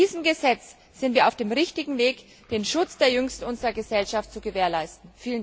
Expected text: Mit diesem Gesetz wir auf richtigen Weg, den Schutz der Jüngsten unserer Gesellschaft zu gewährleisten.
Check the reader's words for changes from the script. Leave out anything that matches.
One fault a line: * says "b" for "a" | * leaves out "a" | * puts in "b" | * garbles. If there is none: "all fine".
* puts in "sind"
* puts in "dem"